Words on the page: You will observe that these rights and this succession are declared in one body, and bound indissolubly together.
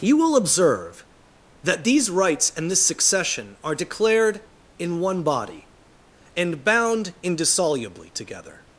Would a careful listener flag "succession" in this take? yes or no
no